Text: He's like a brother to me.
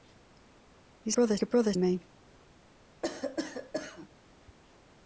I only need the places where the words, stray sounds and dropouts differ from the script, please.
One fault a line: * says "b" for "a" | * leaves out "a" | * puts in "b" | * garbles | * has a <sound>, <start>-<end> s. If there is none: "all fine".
* says "brother" for "like"
* leaves out "to"
* has a cough, 3.0-4.1 s